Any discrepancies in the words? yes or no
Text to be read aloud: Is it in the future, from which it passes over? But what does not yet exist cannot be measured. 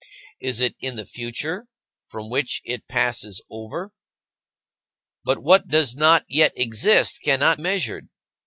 yes